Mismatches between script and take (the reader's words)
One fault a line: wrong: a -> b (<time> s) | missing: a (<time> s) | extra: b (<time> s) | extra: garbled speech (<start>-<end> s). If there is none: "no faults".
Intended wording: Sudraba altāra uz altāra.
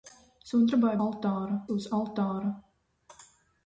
no faults